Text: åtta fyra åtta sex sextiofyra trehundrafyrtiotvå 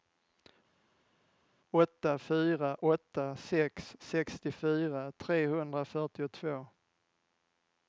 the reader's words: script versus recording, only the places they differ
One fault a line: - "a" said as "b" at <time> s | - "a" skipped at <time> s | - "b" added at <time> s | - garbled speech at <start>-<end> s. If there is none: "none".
none